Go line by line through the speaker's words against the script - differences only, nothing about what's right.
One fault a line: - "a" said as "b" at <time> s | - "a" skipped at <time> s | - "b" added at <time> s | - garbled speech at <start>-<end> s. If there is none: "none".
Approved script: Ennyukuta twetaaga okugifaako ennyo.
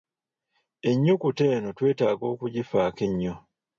- "eno" added at 1.6 s